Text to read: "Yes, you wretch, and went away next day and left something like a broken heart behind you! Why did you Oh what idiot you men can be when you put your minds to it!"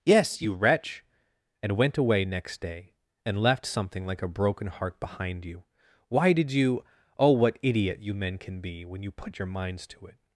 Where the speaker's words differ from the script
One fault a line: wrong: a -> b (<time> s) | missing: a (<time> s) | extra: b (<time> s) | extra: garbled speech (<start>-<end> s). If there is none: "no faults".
no faults